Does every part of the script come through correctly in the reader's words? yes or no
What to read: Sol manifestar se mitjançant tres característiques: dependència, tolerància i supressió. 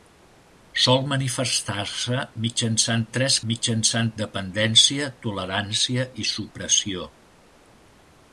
no